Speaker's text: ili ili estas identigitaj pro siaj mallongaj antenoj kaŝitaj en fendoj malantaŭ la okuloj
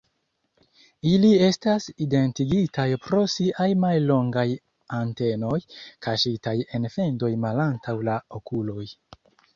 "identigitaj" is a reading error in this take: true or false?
false